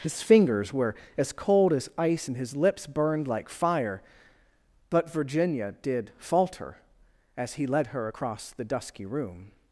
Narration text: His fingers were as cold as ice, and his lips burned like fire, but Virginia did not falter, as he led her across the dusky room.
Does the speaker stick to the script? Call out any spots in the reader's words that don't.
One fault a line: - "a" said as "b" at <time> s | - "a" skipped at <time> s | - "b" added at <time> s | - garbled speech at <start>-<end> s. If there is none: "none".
- "not" skipped at 6.1 s